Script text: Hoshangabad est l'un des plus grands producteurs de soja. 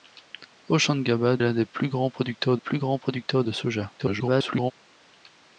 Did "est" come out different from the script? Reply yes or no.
yes